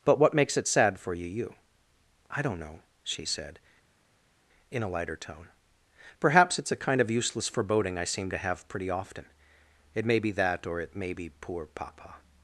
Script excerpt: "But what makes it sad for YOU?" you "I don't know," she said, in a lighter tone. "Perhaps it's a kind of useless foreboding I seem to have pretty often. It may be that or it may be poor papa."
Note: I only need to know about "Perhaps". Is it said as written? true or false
true